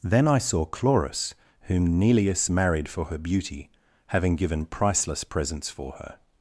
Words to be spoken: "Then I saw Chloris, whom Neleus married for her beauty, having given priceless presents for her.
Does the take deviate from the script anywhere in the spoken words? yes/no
no